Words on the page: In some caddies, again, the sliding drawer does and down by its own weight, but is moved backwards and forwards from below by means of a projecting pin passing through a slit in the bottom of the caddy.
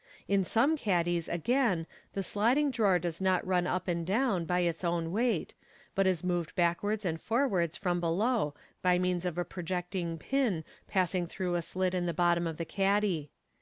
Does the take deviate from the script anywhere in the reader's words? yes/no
yes